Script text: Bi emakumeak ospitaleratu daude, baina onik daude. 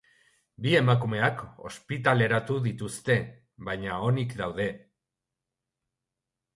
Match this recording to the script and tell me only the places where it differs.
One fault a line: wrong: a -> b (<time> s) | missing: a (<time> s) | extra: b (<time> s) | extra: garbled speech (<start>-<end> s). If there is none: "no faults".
wrong: daude -> dituzte (2.7 s)